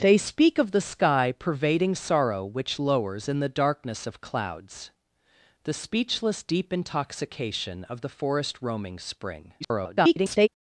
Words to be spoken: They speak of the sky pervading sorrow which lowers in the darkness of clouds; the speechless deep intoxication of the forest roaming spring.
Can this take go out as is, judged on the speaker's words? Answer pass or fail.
fail